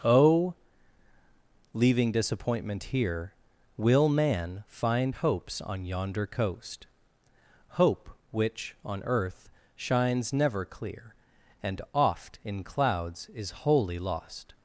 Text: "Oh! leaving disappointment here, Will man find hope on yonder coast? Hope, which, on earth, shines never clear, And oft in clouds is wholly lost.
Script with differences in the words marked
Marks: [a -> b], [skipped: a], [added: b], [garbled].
"Oh! leaving disappointment here, Will man find [hope -> hopes] on yonder coast? Hope, which, on earth, shines never clear, And oft in clouds is wholly lost.